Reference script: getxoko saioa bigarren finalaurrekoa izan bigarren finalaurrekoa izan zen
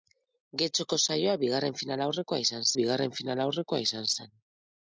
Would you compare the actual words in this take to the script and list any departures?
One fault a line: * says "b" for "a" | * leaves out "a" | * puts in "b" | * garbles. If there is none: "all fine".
all fine